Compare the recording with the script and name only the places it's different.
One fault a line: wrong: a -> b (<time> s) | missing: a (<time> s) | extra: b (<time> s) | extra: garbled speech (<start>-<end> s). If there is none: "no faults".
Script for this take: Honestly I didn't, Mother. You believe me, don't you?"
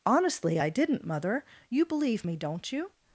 no faults